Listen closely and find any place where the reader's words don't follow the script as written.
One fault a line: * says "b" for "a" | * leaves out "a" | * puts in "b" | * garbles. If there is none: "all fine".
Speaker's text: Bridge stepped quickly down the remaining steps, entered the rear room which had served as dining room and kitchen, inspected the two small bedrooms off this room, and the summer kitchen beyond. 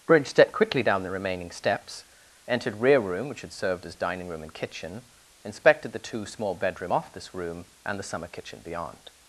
* leaves out "the"
* says "bedroom" for "bedrooms"